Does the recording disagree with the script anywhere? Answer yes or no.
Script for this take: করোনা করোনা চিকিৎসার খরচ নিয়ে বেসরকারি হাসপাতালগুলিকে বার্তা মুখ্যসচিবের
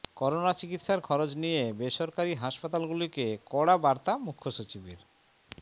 yes